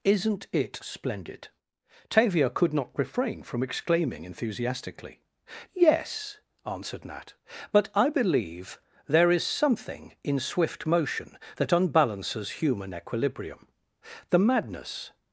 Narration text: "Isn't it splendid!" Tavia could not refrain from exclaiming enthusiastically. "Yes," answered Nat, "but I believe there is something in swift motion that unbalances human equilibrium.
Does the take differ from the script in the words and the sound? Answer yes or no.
yes